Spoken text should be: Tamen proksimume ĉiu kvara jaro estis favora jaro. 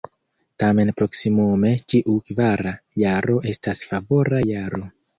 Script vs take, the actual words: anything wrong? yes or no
yes